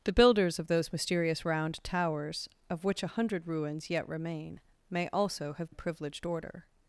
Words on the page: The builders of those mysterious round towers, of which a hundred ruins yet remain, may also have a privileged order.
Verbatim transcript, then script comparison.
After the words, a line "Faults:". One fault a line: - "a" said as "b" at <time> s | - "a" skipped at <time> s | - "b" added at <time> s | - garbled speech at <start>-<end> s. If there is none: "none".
The builders of those mysterious round towers, of which a hundred ruins yet remain, may also have a privileged order.
Faults:
none